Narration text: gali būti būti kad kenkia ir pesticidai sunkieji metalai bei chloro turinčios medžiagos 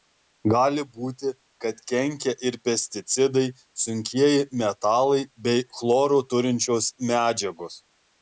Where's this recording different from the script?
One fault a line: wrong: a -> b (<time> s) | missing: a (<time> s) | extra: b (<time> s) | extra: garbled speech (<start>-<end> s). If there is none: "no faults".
missing: būti (1.3 s)